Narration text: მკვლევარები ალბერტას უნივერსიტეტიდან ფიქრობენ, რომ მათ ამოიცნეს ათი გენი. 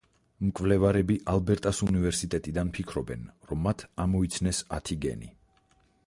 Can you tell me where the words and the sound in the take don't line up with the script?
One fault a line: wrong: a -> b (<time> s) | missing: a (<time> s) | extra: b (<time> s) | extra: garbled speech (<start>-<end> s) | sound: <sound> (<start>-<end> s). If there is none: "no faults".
no faults